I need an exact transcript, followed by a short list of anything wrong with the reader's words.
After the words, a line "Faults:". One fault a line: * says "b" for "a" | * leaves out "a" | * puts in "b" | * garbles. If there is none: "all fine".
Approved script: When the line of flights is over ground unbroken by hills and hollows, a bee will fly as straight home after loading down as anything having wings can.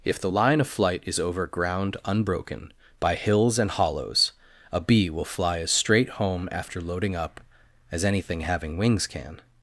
If the line of flight is over ground unbroken by hills and hollows, a bee will fly as straight home after loading up as anything having wings can.
Faults:
* says "If" for "When"
* says "flight" for "flights"
* says "up" for "down"